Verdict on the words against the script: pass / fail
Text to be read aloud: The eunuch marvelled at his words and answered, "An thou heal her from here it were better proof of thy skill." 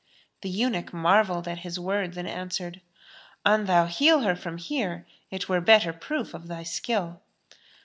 pass